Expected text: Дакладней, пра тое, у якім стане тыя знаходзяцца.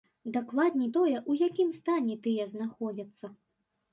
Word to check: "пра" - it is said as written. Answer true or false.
false